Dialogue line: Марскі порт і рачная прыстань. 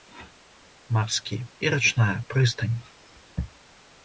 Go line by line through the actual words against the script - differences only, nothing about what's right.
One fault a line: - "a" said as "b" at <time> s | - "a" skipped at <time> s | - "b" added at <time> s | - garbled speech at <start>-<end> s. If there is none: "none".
- "порт" skipped at 1.4 s